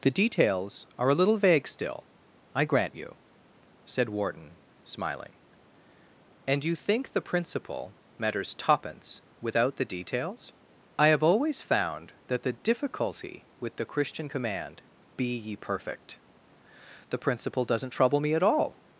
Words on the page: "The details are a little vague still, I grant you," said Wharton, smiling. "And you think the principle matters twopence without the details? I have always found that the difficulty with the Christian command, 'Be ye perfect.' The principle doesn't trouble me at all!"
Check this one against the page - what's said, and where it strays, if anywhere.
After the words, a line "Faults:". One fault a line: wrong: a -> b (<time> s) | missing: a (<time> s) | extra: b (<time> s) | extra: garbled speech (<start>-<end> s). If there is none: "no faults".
"The details are a little vague still, I grant you," said Wharton, smiling. "And you think the principle matters twopence without the details? I have always found that the difficulty with the Christian command, 'Be ye perfect.' The principle doesn't trouble me at all!"
Faults:
no faults